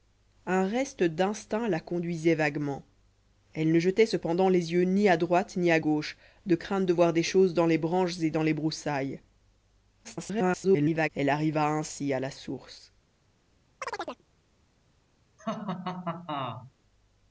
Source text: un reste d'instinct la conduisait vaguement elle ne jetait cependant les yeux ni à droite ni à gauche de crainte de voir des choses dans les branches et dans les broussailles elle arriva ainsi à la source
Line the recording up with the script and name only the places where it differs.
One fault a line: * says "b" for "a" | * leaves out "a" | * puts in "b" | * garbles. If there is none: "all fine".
* garbles